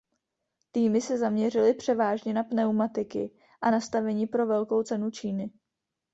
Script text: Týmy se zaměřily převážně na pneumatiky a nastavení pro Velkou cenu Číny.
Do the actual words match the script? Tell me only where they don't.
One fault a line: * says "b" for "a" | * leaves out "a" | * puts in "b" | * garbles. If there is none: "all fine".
all fine